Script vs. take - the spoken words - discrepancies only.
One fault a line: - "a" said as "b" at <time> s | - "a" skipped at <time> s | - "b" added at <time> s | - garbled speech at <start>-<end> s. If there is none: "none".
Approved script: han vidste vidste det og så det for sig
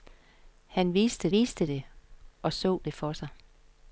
none